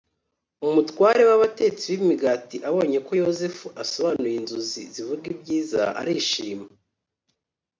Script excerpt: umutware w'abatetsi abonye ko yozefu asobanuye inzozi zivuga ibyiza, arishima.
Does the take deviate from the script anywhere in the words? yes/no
yes